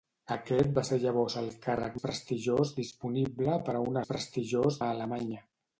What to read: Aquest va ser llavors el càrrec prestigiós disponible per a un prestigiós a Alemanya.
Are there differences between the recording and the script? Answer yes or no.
no